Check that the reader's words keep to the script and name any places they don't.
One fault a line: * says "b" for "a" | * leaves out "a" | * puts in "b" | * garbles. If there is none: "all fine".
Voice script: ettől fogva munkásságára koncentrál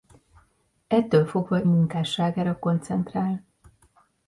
all fine